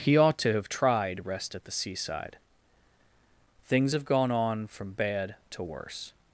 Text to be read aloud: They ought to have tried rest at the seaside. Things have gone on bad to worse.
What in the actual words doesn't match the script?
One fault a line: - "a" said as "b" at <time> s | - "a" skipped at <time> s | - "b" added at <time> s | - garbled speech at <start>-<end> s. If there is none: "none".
- "They" said as "He" at 0.0 s
- "from" added at 4.7 s